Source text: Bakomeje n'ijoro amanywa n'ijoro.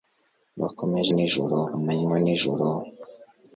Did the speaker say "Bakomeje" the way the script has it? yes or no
yes